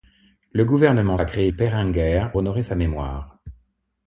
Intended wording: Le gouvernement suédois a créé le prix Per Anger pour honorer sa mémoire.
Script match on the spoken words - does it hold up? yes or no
no